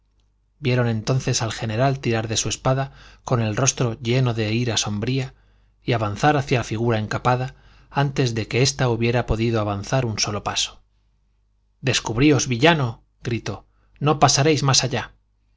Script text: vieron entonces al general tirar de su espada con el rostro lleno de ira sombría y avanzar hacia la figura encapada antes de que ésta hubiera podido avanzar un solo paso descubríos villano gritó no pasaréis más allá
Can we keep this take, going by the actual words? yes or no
yes